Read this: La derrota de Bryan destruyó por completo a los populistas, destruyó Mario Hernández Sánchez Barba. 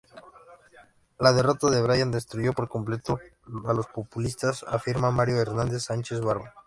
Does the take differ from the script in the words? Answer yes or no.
yes